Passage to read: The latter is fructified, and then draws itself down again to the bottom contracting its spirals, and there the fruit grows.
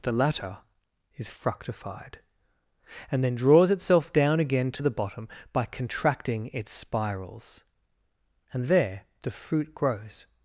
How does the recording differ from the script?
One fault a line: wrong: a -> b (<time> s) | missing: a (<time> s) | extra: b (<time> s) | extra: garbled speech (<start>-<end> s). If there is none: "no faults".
extra: by (5.5 s)